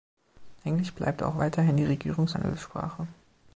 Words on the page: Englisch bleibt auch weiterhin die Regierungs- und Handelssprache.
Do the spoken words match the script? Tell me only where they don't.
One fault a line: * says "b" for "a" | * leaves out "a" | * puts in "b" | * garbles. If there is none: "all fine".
* leaves out "und"